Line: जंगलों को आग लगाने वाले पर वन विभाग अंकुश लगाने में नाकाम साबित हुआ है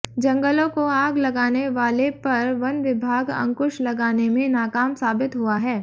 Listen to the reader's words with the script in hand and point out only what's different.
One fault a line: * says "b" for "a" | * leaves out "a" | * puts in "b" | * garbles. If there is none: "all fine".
all fine